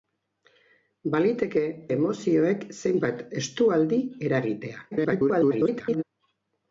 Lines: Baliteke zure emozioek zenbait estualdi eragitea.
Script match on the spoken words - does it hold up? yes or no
no